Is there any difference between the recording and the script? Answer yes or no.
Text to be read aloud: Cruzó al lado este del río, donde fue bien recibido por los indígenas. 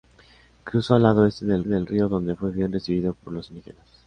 yes